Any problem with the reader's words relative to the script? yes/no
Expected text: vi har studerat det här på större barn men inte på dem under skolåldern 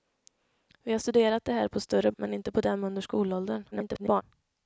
yes